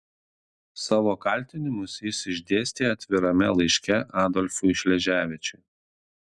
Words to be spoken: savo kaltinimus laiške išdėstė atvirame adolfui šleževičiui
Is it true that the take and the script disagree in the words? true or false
true